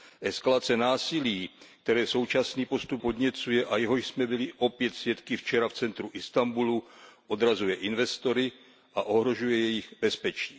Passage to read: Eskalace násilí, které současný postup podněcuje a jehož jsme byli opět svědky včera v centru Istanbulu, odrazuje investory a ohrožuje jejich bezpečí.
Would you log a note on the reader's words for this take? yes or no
no